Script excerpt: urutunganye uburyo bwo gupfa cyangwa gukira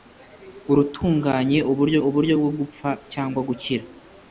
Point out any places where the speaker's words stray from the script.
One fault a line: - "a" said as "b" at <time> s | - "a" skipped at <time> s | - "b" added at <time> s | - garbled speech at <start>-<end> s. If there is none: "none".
- "uburyo" added at 2.1 s